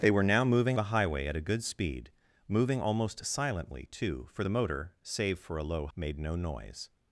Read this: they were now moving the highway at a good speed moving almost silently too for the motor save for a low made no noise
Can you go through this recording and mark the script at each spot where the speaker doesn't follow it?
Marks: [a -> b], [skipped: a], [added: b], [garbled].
they were now moving the highway at a good speed moving almost silently too for the motor save for a low made no noise